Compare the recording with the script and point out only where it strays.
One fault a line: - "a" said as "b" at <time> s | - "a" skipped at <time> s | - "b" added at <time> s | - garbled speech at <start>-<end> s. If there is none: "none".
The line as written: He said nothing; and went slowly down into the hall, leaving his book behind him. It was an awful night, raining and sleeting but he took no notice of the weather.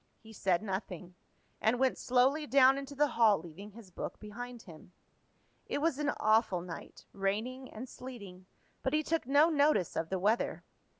none